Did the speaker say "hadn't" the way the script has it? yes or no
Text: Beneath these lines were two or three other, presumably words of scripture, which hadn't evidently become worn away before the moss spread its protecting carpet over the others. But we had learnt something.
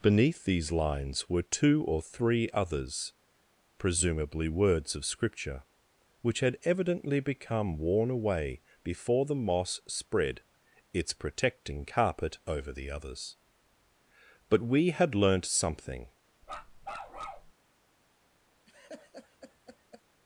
no